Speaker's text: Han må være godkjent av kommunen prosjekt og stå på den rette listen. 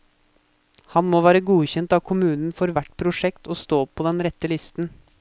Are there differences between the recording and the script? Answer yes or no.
yes